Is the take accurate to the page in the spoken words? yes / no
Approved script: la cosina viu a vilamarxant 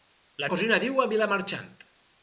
yes